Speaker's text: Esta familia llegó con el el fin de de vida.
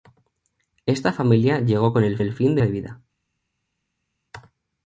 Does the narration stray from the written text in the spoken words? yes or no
no